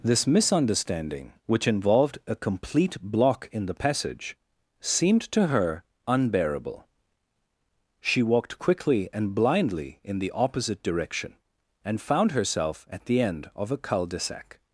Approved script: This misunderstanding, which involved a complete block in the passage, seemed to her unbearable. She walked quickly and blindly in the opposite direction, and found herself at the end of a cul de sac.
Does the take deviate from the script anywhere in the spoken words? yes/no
no